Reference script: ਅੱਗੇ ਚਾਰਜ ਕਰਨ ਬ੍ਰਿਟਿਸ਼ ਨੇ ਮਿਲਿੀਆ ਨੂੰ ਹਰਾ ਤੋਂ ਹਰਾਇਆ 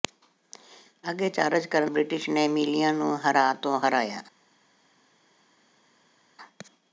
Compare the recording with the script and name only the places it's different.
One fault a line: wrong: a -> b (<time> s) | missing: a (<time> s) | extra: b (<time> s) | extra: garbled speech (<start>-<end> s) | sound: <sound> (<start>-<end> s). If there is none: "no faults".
no faults